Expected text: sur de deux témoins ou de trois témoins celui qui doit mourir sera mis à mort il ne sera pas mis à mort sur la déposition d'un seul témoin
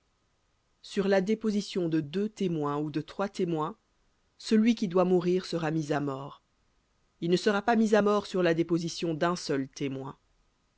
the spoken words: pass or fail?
fail